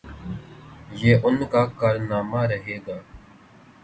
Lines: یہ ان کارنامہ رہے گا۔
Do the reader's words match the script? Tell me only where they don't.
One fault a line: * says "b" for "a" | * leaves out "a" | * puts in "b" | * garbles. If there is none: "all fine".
* puts in "کا"